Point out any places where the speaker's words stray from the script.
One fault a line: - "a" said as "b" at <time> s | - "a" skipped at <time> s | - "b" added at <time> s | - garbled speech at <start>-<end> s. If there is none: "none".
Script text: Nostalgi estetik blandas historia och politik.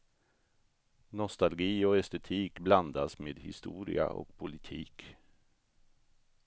- "och" added at 1.9 s
- "med" added at 3.2 s